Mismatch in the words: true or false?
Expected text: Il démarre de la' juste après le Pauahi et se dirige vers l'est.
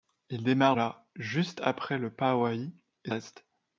true